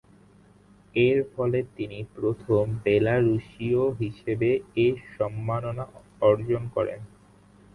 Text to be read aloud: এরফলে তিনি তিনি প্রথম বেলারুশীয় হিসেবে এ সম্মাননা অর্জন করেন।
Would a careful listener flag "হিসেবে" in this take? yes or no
no